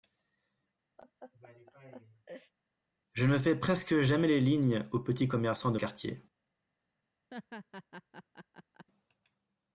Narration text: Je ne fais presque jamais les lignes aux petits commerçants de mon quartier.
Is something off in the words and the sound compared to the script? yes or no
yes